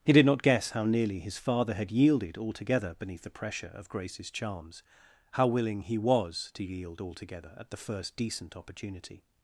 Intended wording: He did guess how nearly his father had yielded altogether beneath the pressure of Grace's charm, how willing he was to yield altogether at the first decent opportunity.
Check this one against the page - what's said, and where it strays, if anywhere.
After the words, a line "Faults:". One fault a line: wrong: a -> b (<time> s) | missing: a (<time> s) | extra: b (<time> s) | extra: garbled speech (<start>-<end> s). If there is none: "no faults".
He did not guess how nearly his father had yielded altogether beneath the pressure of Grace's charms, how willing he was to yield altogether at the first decent opportunity.
Faults:
extra: not (0.2 s)
wrong: charm -> charms (4.3 s)